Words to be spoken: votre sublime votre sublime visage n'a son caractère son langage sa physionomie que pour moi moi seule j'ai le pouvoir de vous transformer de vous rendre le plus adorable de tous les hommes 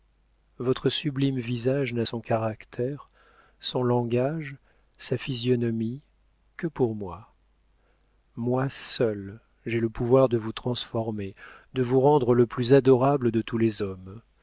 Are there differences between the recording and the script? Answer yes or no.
yes